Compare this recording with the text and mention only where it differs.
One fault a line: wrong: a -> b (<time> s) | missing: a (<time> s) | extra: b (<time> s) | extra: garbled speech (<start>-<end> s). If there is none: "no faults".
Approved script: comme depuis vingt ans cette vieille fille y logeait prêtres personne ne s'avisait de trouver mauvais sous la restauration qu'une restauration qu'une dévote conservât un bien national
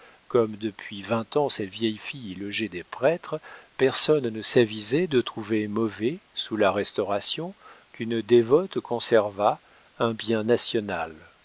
extra: des (2.7 s)
missing: restauration qu'une (8.2 s)